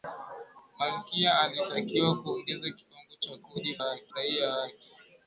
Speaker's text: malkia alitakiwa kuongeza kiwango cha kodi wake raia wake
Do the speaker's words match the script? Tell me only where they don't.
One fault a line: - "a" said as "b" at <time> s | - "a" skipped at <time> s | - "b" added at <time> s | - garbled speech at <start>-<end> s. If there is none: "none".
none